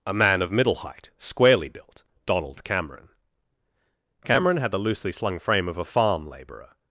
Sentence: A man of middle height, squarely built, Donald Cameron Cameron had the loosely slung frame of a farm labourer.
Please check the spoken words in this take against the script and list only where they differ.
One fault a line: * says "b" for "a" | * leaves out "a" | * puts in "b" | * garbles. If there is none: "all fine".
all fine